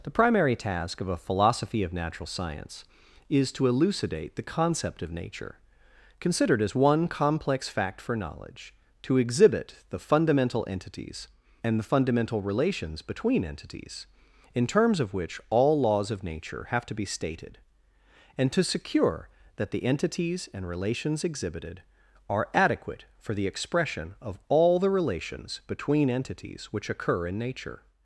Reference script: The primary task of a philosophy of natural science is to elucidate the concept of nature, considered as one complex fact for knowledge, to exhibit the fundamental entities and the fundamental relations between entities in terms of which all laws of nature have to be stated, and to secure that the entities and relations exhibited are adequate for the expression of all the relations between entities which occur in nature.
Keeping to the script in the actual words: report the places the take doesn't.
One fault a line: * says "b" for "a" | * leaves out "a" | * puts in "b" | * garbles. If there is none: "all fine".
all fine